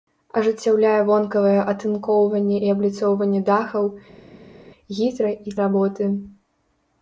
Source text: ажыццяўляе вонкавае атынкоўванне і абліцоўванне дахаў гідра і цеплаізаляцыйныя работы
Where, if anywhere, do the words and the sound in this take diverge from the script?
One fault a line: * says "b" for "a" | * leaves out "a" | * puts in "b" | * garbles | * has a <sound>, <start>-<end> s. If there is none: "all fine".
* leaves out "цеплаізаляцыйныя"